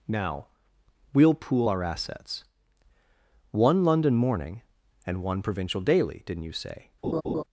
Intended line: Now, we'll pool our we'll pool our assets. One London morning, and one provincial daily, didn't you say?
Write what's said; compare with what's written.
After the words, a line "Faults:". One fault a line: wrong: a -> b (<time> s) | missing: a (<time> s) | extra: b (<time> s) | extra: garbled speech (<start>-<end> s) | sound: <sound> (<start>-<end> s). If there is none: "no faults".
Now, we'll pool our assets. One London morning, and one provincial daily, didn't you say?
Faults:
missing: we'll pool our (1.8 s)
sound: laugh (7.0-7.4 s)